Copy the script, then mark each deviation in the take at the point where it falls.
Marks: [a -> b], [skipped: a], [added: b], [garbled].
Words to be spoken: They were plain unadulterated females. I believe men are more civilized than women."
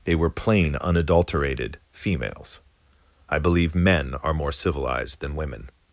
They were plain unadulterated females. I believe men are more civilized than women."